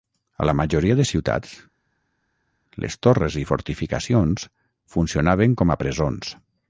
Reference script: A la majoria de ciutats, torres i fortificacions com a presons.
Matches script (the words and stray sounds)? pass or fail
fail